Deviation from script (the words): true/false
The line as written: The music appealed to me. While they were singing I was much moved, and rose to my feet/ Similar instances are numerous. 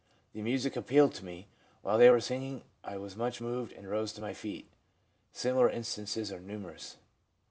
false